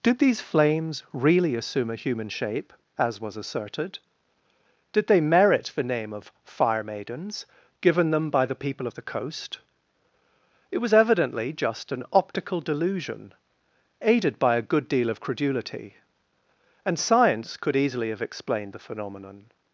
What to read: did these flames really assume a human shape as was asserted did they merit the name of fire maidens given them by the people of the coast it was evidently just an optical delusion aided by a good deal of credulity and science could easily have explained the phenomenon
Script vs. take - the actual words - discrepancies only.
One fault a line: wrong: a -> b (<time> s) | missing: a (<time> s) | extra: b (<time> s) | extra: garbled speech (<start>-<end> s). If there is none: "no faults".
no faults